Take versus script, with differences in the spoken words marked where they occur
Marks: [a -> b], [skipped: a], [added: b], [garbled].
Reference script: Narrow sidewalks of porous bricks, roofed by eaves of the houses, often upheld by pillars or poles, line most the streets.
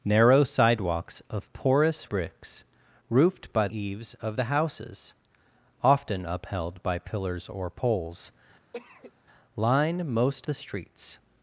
Narrow sidewalks of porous bricks, roofed by eaves of the houses, often upheld by pillars or poles, line most the streets.